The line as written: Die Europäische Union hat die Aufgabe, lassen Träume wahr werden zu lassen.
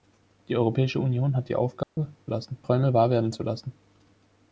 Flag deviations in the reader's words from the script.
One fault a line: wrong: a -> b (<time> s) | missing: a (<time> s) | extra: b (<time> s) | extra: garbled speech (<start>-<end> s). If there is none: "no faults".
no faults